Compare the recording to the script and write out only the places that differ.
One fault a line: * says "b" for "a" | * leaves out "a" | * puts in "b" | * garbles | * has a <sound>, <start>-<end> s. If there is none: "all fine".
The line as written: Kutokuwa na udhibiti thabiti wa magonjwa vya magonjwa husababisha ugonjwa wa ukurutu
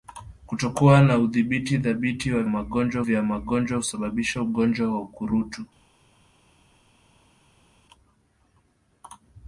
all fine